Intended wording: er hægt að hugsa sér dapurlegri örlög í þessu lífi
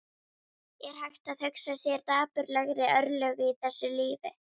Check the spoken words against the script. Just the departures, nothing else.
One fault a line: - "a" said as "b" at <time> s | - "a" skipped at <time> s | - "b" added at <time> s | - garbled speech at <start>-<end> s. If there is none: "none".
none